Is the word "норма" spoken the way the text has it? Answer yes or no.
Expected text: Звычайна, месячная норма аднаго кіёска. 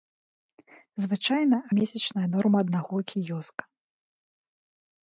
yes